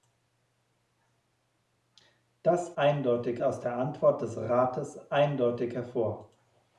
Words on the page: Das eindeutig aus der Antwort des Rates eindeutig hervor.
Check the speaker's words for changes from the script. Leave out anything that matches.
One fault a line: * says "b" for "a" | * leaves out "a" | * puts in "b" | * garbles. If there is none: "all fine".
all fine